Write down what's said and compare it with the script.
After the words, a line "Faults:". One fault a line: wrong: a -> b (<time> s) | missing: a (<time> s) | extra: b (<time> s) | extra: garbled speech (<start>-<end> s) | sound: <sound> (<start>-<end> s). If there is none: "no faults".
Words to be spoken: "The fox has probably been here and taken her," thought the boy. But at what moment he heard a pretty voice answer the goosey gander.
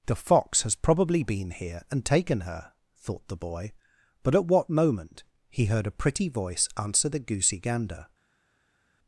"The fox has probably been here and taken her," thought the boy. But at what moment he heard a pretty voice answer the goosey gander.
Faults:
no faults